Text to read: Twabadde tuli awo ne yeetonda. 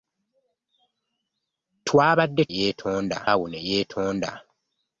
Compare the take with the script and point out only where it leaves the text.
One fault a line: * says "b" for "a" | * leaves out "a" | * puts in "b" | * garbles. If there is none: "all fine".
* says "yeetonda" for "tuli"